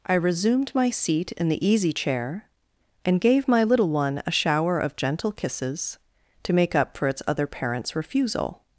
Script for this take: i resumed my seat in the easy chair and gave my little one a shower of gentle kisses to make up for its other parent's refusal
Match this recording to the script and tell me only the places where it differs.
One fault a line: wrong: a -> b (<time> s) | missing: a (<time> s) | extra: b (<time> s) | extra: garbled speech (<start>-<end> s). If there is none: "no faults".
no faults